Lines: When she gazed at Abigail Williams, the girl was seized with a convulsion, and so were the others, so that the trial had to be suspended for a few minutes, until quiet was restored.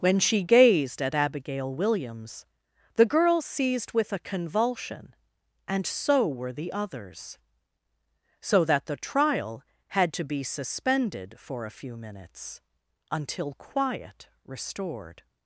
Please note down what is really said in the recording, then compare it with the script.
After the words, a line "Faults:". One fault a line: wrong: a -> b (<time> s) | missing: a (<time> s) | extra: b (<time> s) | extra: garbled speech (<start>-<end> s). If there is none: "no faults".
When she gazed at Abigail Williams, the girl seized with a convulsion, and so were the others, so that the trial had to be suspended for a few minutes, until quiet restored.
Faults:
missing: was (3.4 s)
missing: was (14.3 s)